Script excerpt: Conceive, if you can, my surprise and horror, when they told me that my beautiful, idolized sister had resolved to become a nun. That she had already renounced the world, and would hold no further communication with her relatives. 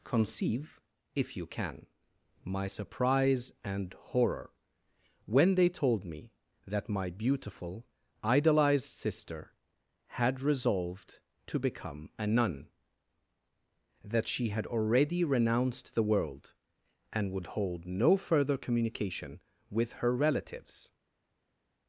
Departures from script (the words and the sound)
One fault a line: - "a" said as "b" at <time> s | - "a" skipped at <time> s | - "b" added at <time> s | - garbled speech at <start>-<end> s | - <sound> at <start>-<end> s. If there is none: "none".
none